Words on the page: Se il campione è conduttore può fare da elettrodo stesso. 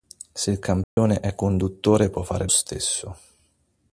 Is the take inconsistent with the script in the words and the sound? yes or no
yes